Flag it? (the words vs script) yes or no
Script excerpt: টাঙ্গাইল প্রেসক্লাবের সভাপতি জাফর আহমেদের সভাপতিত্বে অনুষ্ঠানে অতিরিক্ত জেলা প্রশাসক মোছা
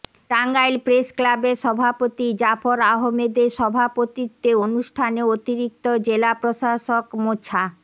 no